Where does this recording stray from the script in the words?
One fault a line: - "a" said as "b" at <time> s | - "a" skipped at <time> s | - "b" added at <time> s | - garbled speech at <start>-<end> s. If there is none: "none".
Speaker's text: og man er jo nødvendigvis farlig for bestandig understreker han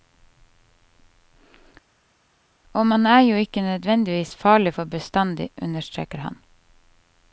- "ikke" added at 3.4 s